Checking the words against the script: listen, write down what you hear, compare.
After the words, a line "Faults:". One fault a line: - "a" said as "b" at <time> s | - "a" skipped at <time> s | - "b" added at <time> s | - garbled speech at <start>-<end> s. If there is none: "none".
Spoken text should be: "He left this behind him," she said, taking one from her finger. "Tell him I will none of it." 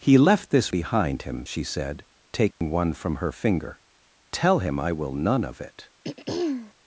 "He left this behind him," she said, taking one from her finger. "Tell him I will none of it."
Faults:
none